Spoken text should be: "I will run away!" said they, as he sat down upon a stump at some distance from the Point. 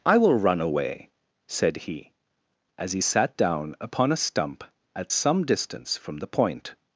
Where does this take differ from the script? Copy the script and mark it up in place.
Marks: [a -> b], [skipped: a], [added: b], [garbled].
"I will run away!" said [they, -> he] as he sat down upon a stump at some distance from the Point.